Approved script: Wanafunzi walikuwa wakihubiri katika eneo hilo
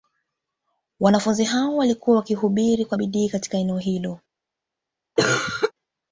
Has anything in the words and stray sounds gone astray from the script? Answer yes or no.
yes